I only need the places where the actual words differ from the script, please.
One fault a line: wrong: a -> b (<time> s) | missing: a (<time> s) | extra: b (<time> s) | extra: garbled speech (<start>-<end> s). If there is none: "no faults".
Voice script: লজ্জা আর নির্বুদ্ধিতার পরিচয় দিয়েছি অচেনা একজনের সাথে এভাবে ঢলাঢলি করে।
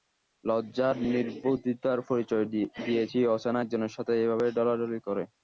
no faults